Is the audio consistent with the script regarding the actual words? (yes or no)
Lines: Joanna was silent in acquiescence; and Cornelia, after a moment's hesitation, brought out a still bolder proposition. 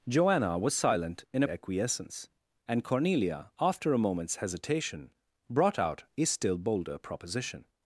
yes